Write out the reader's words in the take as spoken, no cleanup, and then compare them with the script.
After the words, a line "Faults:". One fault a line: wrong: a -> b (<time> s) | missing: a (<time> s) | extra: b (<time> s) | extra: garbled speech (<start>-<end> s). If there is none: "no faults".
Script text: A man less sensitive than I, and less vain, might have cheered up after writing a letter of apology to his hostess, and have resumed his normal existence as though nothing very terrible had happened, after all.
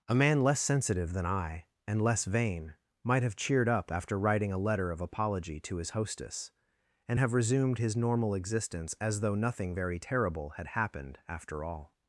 A man less sensitive than I, and less vain, might have cheered up after writing a letter of apology to his hostess, and have resumed his normal existence as though nothing very terrible had happened, after all.
Faults:
no faults